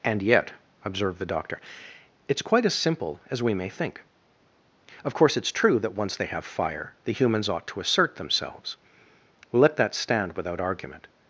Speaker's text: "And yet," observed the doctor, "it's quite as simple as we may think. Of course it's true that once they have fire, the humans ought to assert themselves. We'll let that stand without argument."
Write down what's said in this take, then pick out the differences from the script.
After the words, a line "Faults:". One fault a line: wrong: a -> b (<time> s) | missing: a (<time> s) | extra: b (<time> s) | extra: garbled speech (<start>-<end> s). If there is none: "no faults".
"And yet," observed the doctor, "it's quite as simple as we may think. Of course it's true that once they have fire, the humans ought to assert themselves. We'll let that stand without argument."
Faults:
no faults